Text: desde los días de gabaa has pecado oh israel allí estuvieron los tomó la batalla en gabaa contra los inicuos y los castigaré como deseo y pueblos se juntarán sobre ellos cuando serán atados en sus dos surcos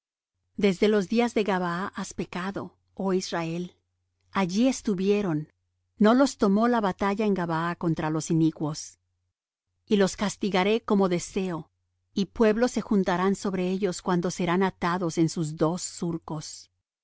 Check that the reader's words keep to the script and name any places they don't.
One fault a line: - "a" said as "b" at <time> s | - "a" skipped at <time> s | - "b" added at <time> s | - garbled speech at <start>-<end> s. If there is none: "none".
- "no" added at 6.0 s